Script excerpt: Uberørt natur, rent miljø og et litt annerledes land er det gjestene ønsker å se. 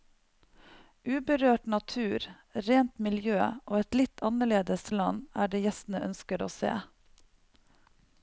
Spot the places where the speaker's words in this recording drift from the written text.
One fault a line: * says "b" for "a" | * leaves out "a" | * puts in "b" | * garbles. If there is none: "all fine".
all fine